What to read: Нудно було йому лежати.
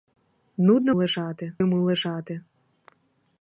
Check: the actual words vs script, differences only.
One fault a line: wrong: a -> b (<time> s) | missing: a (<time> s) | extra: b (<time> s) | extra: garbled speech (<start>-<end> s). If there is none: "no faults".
wrong: було -> лежати (0.9 s)